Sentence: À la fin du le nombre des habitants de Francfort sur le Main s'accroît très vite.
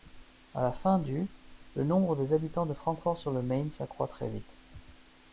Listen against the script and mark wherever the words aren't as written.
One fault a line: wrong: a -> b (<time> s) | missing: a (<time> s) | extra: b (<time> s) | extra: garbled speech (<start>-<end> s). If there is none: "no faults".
no faults